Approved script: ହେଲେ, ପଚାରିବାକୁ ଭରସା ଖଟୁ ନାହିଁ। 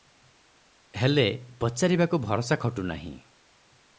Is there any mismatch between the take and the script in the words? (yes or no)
no